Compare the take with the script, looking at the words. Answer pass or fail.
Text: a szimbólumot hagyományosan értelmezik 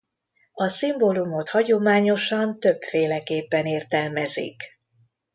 fail